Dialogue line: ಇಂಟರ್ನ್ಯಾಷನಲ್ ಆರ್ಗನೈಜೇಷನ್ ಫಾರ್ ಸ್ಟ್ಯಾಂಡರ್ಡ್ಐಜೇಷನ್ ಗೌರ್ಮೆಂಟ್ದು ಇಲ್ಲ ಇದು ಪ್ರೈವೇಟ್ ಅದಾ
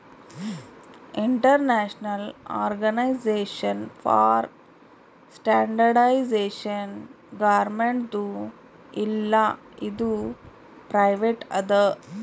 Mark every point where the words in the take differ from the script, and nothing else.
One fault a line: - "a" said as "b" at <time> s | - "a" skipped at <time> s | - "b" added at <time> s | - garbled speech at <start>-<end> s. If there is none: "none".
none